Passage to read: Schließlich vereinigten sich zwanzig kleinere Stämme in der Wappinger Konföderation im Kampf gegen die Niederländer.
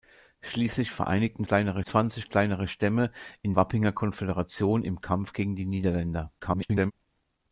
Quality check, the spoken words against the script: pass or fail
fail